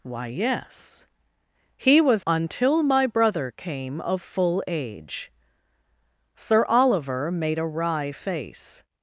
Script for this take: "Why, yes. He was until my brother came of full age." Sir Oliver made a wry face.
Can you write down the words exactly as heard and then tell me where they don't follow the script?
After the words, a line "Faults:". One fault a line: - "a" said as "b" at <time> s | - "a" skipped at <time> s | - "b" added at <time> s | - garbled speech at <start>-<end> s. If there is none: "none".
"Why, yes. He was until my brother came of full age." Sir Oliver made a wry face.
Faults:
none